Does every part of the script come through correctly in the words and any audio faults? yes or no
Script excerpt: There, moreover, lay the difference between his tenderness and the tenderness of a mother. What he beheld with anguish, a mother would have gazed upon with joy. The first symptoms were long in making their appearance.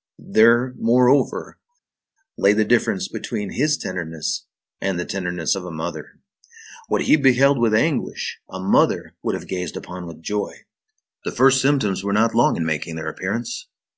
no